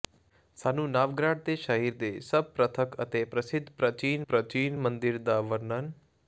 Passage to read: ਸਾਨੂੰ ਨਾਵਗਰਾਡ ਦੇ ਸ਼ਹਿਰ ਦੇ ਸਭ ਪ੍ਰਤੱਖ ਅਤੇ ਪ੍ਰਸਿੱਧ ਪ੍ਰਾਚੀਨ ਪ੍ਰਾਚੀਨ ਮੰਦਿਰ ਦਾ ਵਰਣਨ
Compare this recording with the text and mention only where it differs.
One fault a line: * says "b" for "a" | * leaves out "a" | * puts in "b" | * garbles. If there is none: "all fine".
all fine